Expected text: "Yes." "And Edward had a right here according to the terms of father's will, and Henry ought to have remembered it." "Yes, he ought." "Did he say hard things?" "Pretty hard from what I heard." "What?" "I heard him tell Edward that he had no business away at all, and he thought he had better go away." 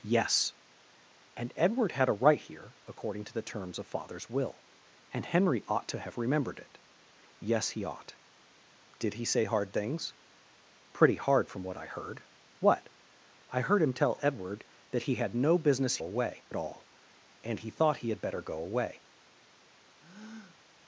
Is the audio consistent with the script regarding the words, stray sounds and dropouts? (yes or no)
no